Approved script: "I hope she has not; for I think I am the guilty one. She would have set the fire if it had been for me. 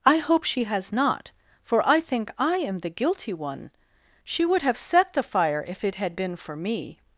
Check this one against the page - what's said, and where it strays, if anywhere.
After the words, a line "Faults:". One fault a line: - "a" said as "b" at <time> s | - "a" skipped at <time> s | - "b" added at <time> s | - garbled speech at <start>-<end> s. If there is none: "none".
"I hope she has not; for I think I am the guilty one. She would have set the fire if it had been for me.
Faults:
none